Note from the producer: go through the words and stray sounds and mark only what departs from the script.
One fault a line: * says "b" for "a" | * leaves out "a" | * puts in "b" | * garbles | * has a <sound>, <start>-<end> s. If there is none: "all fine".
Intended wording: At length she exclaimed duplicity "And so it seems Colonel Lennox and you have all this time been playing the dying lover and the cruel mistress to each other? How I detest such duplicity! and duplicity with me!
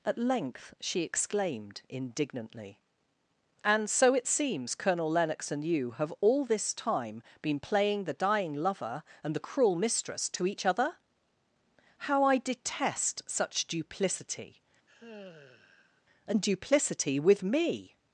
* says "indignantly" for "duplicity"
* has a sigh, 14.9-16.0 s